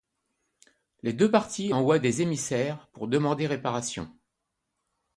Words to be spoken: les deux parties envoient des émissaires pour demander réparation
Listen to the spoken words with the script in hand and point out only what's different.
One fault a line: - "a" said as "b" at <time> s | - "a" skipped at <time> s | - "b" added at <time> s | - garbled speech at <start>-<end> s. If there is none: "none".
none